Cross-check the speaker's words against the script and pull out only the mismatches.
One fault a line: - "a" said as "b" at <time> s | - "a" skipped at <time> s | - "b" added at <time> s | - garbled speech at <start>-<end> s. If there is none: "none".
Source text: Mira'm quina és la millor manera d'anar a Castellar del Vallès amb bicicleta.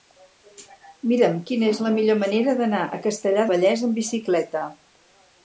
- "del" skipped at 3.5 s